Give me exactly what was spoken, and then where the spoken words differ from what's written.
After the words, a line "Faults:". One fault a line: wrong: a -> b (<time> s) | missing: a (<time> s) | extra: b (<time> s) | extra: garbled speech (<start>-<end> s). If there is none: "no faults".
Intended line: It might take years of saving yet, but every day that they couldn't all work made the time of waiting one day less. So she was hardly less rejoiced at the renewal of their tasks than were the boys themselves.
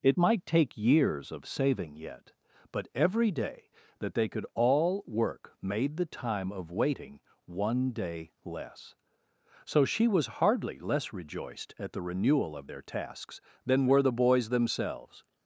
It might take years of saving yet, but every day that they could all work made the time of waiting one day less. So she was hardly less rejoiced at the renewal of their tasks than were the boys themselves.
Faults:
wrong: couldn't -> could (4.3 s)